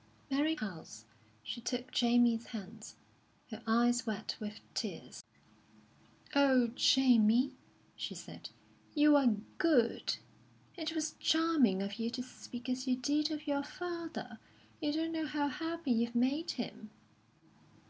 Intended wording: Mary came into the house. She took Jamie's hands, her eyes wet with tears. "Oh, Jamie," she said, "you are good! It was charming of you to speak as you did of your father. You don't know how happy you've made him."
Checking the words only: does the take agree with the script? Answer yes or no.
no